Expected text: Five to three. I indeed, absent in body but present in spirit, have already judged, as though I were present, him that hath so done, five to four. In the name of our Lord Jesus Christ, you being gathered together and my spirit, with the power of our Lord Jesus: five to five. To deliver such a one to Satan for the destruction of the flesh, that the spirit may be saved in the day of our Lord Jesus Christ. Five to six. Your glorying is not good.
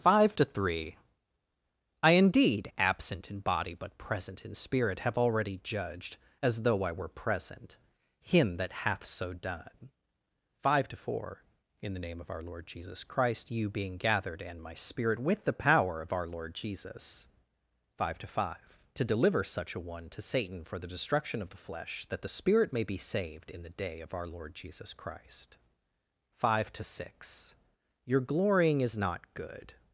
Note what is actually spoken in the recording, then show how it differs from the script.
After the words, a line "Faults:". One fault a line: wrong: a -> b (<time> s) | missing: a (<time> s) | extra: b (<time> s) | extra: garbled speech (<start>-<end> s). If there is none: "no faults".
Five to three. I indeed, absent in body but present in spirit, have already judged, as though I were present, him that hath so done, five to four. In the name of our Lord Jesus Christ, you being gathered and my spirit, with the power of our Lord Jesus: five to five. To deliver such a one to Satan for the destruction of the flesh, that the spirit may be saved in the day of our Lord Jesus Christ. Five to six. Your glorying is not good.
Faults:
missing: together (14.4 s)